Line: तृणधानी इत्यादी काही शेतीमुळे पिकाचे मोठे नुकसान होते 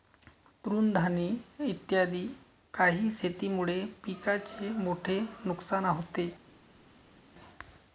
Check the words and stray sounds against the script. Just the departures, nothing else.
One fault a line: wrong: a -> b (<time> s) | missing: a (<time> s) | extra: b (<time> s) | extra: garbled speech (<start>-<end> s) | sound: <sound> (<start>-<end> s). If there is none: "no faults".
no faults